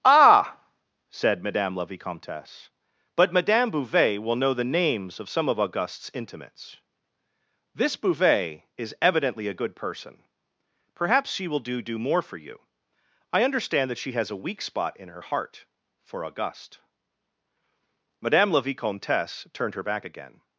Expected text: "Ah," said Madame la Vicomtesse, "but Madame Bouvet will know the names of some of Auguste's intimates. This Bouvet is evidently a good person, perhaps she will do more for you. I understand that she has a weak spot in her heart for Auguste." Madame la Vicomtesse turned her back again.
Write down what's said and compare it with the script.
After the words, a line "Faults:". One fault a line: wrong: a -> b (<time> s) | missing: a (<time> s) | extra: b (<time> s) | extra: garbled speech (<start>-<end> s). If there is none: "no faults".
"Ah," said Madame la Vicomtesse, "but Madame Bouvet will know the names of some of Auguste's intimates. This Bouvet is evidently a good person, perhaps she will do do more for you. I understand that she has a weak spot in her heart for Auguste." Madame la Vicomtesse turned her back again.
Faults:
extra: do (11.8 s)